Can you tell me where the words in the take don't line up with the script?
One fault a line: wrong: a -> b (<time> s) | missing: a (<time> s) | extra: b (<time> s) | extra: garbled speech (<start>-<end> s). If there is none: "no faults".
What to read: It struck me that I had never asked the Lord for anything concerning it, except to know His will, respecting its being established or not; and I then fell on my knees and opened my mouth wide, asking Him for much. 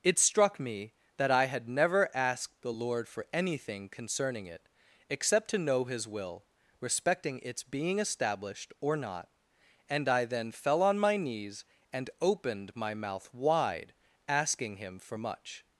no faults